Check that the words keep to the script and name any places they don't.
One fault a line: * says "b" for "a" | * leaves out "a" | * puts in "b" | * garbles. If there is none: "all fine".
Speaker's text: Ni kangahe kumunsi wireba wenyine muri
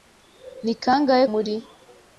* leaves out "kumunsi wireba wenyine"